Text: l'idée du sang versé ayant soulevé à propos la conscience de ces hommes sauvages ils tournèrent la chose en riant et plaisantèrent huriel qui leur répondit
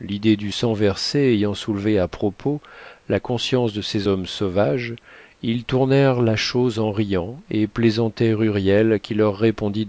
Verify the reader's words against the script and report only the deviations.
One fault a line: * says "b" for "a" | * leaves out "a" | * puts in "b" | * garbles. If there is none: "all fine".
all fine